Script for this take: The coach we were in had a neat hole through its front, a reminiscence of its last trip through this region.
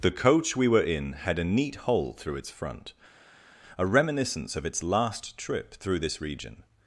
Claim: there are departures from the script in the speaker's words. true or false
false